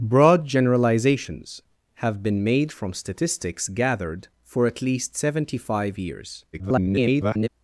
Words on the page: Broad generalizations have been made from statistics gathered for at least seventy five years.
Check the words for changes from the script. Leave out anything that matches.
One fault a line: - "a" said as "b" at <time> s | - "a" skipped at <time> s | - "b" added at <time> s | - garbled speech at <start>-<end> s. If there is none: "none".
- garbled speech at 6.5-7.5 s